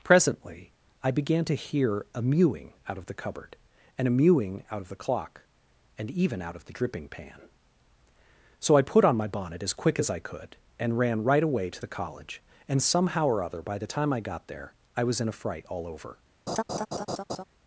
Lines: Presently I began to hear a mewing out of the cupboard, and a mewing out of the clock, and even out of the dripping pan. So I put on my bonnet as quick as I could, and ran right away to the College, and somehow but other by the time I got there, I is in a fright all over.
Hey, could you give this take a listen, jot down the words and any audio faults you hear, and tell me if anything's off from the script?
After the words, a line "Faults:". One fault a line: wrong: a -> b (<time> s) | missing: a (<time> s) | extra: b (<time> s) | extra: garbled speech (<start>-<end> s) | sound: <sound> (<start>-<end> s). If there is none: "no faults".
Presently I began to hear a mewing out of the cupboard, and a mewing out of the clock, and even out of the dripping pan. So I put on my bonnet as quick as I could, and ran right away to the College, and somehow or other by the time I got there, I was in a fright all over.
Faults:
wrong: but -> or (13.3 s)
wrong: is -> was (15.0 s)
sound: laugh (16.5-17.4 s)